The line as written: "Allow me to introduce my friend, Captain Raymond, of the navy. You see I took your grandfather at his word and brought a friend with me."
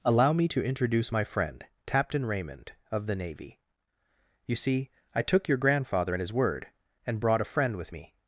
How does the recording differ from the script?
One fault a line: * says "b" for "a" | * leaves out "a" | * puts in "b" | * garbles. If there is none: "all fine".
all fine